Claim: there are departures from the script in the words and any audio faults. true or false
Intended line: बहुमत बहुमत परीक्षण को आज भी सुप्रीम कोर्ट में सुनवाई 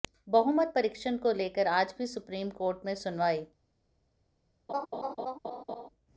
true